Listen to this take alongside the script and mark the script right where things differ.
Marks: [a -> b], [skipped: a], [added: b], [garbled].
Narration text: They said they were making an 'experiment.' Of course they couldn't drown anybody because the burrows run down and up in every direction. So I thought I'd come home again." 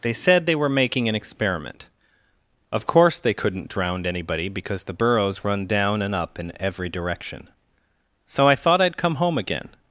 They said they were making an 'experiment.' Of course they couldn't drown anybody because the burrows run down and up in every direction. So I thought I'd come home again."